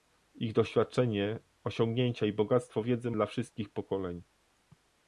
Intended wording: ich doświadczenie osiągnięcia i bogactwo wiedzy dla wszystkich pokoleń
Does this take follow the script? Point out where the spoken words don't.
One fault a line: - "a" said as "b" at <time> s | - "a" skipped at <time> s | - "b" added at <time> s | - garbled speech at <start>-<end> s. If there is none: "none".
none